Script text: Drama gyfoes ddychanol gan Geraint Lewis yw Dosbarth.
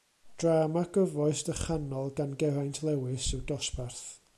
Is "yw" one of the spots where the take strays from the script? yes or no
no